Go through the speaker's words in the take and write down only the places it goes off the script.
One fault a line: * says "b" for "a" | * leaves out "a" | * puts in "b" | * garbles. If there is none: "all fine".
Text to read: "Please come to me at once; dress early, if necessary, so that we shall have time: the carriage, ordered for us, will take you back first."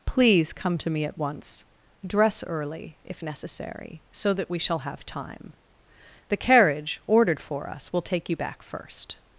all fine